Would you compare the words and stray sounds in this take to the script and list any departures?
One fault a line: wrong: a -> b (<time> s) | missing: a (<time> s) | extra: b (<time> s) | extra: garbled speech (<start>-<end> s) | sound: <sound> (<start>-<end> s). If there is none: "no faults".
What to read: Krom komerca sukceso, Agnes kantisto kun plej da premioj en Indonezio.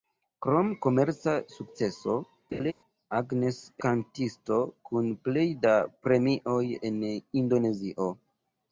sound: laugh (2.5-2.7 s)